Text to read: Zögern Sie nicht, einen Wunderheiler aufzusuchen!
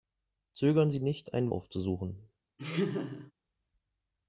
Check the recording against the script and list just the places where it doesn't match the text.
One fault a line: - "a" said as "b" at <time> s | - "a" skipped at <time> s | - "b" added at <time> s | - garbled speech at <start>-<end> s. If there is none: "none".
- "Wunderheiler" skipped at 1.5 s